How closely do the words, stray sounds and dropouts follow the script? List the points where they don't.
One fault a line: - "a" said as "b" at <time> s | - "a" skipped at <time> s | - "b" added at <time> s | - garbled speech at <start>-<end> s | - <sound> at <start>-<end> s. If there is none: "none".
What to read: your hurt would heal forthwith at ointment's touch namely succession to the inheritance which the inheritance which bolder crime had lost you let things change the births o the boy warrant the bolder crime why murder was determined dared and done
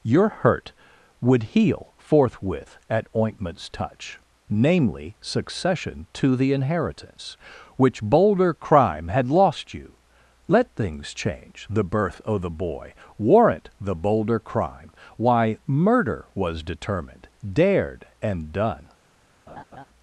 - "the inheritance which" skipped at 8.0 s
- "births" said as "birth" at 11.8 s
- laugh at 19.5-19.9 s